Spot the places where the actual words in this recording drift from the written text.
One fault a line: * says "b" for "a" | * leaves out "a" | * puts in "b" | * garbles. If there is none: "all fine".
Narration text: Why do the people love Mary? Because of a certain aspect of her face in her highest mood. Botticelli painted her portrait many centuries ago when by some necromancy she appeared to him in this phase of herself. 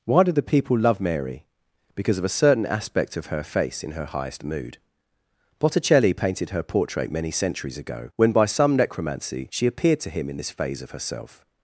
all fine